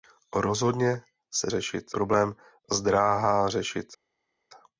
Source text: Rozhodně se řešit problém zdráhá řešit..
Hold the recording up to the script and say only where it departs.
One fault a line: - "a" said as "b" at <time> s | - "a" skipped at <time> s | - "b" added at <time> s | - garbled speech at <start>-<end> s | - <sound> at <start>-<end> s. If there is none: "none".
none